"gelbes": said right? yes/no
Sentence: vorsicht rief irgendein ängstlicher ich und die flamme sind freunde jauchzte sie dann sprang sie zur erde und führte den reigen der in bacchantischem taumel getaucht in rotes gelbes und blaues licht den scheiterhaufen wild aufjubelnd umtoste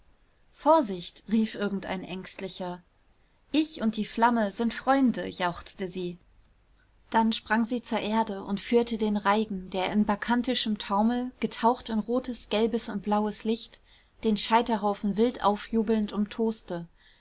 yes